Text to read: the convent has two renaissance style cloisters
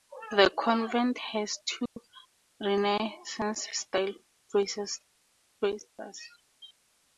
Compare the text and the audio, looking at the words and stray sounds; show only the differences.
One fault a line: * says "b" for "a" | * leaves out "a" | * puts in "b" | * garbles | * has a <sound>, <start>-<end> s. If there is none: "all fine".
* has a dropout, 1.9-2.0 s